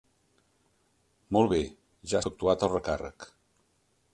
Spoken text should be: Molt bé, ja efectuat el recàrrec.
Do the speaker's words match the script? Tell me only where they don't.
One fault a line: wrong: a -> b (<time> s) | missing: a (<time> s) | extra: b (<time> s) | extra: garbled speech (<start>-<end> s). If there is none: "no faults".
no faults